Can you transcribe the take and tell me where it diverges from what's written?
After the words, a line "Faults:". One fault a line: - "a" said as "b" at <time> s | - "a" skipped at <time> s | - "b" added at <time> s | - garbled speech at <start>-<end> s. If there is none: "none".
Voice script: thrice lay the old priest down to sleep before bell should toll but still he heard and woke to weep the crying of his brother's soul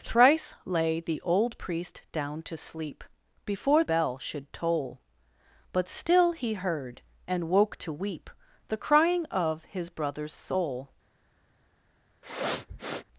thrice lay the old priest down to sleep before bell should toll but still he heard and woke to weep the crying of his brother's soul
Faults:
none